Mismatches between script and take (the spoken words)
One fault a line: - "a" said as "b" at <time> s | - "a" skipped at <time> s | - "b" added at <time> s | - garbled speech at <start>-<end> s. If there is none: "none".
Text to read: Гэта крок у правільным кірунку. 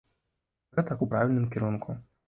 - "крок" skipped at 1.0 s